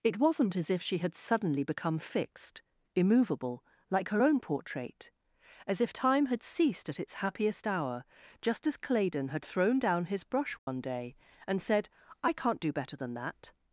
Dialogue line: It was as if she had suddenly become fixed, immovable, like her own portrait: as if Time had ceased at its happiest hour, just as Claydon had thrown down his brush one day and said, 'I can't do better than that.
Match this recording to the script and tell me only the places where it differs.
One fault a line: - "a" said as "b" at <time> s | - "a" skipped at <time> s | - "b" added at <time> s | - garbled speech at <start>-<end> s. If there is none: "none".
- "was" said as "wasn't" at 0.2 s